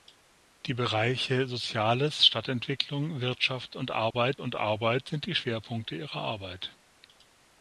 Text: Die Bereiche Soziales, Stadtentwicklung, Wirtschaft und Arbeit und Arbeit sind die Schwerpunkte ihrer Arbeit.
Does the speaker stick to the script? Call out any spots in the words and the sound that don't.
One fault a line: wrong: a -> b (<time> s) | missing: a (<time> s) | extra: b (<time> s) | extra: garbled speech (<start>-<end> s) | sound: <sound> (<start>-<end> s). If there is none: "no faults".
sound: dropout (4.1-4.1 s)